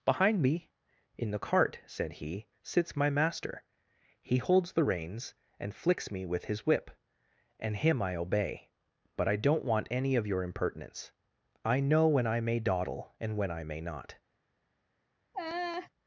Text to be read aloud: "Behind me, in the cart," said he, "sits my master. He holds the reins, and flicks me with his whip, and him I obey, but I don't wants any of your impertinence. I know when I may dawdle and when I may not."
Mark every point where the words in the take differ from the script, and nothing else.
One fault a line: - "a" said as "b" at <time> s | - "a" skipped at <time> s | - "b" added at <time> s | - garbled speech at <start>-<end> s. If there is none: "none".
- "wants" said as "want" at 9.6 s